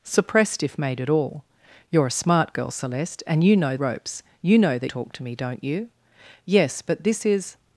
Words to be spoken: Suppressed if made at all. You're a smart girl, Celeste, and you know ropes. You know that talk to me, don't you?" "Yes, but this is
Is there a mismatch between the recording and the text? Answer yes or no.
no